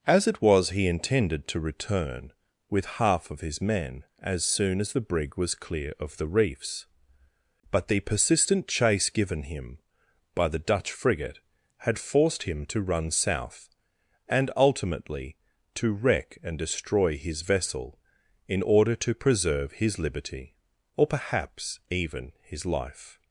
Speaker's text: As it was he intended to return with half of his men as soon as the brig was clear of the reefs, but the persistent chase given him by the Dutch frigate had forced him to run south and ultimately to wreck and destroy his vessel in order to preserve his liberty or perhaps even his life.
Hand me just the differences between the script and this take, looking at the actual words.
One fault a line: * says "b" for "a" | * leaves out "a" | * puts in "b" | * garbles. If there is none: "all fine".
all fine